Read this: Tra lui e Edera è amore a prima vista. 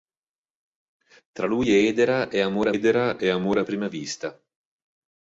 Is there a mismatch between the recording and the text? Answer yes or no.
yes